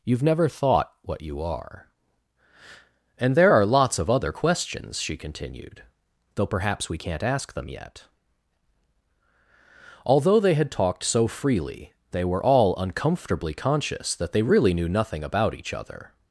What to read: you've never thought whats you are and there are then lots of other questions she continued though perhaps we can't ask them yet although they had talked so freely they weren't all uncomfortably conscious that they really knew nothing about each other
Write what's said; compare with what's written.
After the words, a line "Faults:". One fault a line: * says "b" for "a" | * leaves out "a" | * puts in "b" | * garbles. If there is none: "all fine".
you've never thought what you are and there are lots of other questions she continued though perhaps we can't ask them yet although they had talked so freely they were all uncomfortably conscious that they really knew nothing about each other
Faults:
* says "what" for "whats"
* leaves out "then"
* says "were" for "weren't"